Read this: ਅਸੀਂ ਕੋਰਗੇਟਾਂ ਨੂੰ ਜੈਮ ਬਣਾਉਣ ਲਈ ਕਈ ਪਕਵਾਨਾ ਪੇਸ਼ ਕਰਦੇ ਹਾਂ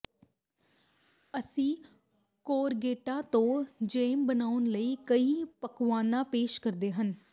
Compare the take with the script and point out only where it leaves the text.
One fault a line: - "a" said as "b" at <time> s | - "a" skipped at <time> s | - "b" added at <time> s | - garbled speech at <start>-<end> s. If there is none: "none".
- "ਨੂੰ" said as "ਤੋਂ" at 3.2 s